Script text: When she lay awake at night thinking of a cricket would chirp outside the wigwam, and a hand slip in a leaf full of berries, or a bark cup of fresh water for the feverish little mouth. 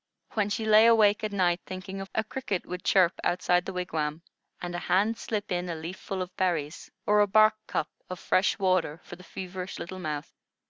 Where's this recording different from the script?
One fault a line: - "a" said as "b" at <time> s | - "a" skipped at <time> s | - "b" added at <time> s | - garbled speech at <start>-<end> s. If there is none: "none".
none